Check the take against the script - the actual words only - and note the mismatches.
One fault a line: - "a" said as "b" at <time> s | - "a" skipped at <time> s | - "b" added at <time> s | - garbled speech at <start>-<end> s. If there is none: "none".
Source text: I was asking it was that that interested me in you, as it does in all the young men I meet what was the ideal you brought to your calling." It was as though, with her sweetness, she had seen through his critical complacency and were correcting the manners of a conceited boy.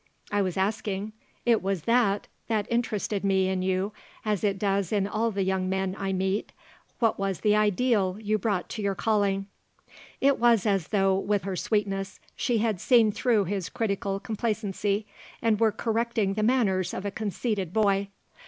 none